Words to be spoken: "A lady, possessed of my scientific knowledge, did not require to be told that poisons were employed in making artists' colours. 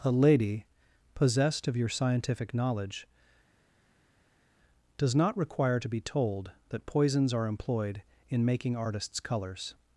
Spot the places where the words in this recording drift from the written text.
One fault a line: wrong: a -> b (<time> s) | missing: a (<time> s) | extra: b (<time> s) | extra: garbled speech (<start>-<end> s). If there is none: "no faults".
wrong: my -> your (1.8 s)
wrong: did -> does (5.0 s)
wrong: were -> are (7.3 s)